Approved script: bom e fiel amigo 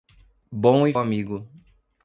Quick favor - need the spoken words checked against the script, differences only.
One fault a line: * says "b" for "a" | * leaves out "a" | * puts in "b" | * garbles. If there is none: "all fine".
* leaves out "fiel"